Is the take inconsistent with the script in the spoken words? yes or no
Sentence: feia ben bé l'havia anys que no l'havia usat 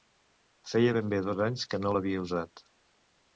yes